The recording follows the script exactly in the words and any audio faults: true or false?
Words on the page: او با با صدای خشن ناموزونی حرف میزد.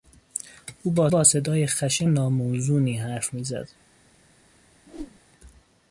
false